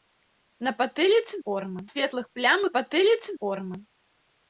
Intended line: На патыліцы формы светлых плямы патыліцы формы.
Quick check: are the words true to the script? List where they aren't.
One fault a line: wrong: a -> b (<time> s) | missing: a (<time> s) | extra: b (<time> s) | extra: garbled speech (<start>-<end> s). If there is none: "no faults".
no faults